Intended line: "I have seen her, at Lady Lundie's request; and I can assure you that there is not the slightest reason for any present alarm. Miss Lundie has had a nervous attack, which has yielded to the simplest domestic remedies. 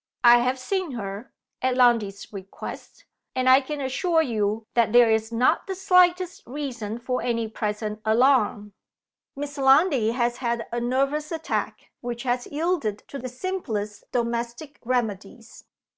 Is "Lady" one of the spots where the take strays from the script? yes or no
yes